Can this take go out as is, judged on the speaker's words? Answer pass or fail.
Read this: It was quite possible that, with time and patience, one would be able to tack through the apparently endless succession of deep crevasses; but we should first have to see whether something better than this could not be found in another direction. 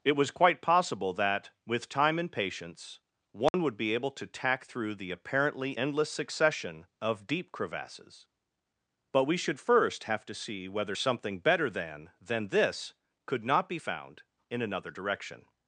fail